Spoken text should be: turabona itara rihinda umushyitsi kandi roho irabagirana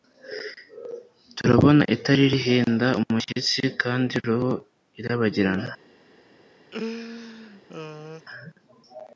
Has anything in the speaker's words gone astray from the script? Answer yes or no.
no